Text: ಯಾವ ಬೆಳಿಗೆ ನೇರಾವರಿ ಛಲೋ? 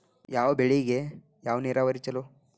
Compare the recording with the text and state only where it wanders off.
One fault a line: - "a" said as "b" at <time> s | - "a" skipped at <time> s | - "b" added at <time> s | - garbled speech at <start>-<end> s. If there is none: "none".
- "ಯಾವ" added at 1.4 s